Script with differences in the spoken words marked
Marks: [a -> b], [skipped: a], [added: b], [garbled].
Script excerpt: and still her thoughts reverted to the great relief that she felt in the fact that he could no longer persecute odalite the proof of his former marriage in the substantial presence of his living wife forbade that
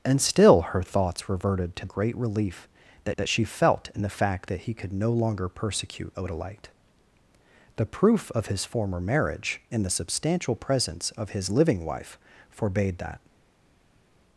and still her thoughts reverted to [skipped: the] great relief that [added: that] she felt in the fact that he could no longer persecute odalite the proof of his former marriage in the substantial presence of his living wife forbade that